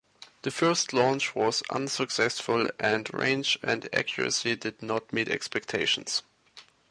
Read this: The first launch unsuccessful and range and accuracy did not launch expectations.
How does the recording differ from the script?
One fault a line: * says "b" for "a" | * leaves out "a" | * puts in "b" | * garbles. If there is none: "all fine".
* puts in "was"
* says "meet" for "launch"